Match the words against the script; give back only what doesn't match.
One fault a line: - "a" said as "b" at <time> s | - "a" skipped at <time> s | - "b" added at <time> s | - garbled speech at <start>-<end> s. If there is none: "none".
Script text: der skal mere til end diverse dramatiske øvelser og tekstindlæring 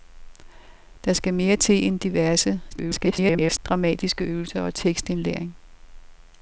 - garbled speech at 2.7-3.6 s